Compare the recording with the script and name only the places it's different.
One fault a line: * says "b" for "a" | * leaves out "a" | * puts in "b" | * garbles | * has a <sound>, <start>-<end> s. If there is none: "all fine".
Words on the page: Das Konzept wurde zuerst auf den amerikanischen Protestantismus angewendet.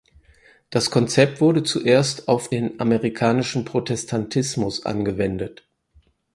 all fine